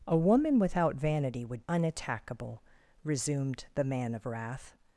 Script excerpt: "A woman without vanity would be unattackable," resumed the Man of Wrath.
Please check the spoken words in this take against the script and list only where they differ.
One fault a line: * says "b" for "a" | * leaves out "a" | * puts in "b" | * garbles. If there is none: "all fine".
* leaves out "be"